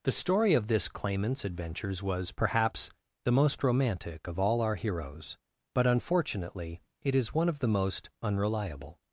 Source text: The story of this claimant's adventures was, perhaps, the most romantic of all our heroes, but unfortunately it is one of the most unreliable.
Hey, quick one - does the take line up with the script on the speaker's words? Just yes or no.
yes